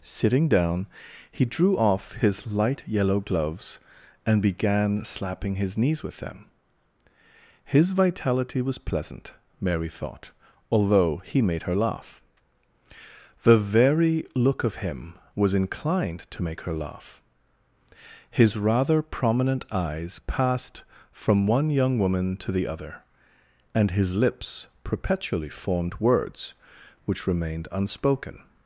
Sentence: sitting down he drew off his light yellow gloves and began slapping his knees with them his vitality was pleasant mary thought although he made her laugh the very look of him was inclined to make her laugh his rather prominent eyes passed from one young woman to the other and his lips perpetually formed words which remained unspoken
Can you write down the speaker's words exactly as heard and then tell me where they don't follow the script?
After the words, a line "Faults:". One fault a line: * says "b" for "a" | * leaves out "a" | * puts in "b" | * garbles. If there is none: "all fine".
sitting down he drew off his light yellow gloves and began slapping his knees with them his vitality was pleasant mary thought although he made her laugh the very look of him was inclined to make her laugh his rather prominent eyes passed from one young woman to the other and his lips perpetually formed words which remained unspoken
Faults:
all fine